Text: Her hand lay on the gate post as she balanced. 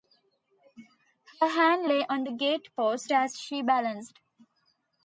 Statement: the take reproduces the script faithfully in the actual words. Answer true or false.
true